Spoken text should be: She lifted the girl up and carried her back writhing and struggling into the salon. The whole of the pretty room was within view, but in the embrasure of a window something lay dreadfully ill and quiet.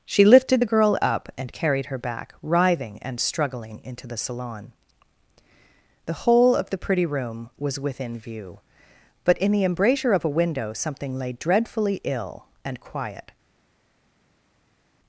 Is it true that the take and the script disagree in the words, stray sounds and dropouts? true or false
false